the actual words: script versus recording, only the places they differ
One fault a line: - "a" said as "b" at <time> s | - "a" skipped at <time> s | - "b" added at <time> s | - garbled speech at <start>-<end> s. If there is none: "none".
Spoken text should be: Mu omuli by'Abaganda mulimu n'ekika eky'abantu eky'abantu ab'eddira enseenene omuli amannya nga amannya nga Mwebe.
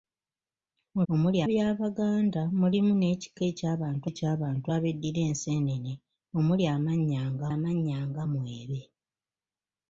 none